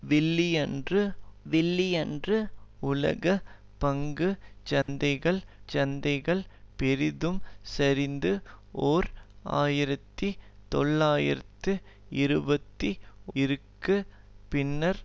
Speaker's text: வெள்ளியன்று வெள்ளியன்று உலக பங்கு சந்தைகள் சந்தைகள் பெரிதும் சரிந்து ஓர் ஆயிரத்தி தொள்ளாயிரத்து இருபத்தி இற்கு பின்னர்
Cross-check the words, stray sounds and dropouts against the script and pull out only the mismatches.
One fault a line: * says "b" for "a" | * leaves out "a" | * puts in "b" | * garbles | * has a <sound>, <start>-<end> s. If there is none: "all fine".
* has a dropout, 4.8-4.9 s